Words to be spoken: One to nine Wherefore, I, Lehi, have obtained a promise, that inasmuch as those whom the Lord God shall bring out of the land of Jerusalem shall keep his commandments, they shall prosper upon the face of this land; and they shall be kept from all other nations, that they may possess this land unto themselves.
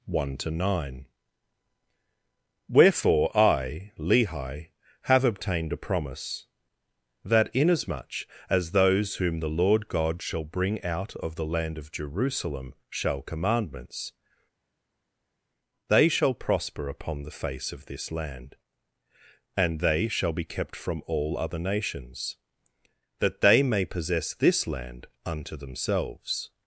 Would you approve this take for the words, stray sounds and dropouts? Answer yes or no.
no